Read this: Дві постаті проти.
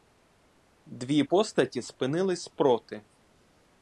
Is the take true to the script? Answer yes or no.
no